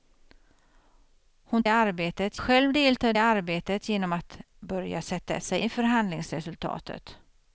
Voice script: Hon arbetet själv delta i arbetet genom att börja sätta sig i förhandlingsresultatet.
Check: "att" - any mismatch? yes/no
no